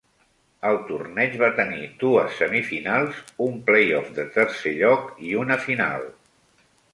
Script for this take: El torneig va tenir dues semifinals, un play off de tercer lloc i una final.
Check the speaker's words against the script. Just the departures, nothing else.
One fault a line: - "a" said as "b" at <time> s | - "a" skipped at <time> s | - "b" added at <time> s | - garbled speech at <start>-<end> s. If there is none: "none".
none